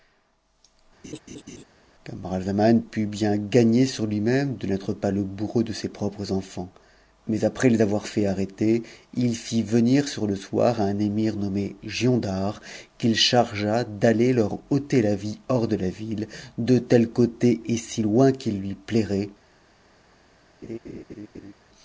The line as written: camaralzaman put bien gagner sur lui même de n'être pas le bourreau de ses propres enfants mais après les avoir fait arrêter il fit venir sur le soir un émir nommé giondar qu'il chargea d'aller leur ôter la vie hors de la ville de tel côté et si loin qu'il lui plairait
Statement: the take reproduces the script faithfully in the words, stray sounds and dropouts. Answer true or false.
false